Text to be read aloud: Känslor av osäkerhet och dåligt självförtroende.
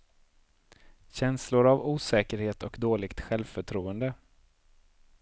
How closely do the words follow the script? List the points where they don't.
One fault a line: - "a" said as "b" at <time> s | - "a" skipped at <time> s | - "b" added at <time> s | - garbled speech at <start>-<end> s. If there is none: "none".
none